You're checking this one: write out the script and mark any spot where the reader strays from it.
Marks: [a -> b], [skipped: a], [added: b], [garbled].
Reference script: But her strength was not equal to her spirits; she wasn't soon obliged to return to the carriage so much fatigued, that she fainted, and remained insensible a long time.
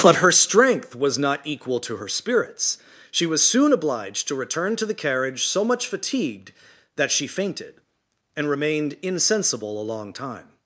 But her strength was not equal to her spirits; she [wasn't -> was] soon obliged to return to the carriage so much fatigued, that she fainted, and remained insensible a long time.